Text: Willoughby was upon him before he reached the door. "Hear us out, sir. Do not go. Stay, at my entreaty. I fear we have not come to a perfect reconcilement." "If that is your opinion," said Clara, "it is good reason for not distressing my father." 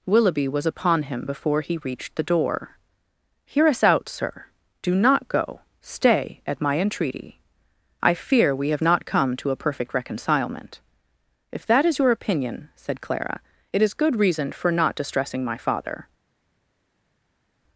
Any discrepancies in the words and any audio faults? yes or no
no